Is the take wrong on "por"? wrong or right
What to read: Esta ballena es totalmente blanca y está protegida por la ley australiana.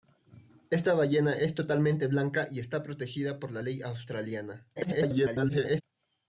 right